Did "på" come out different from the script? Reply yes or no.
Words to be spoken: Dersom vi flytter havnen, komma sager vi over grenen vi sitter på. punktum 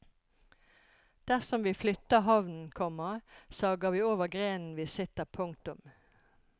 yes